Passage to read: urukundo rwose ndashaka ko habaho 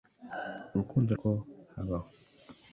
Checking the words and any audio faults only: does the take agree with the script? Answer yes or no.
no